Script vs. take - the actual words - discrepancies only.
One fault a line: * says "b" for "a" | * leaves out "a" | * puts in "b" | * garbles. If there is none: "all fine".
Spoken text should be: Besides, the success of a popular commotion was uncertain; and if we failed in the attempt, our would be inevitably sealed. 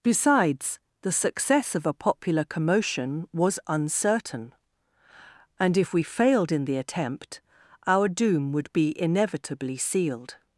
* puts in "doom"